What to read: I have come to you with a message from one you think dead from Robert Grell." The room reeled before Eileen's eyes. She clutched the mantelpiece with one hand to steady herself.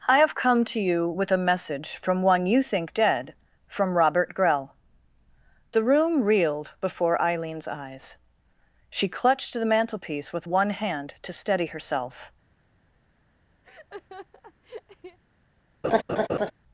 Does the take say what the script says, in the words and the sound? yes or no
no